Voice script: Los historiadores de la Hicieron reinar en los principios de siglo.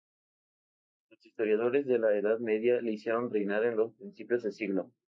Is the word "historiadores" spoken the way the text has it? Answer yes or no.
yes